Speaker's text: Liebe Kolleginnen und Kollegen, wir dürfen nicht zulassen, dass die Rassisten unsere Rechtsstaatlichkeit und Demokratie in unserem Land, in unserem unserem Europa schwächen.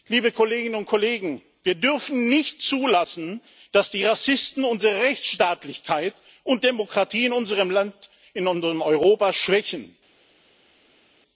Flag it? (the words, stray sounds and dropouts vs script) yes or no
yes